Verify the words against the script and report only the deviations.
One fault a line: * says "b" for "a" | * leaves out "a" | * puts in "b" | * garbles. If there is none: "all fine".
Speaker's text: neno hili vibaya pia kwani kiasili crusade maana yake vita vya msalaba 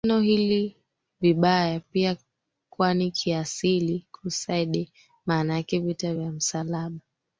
all fine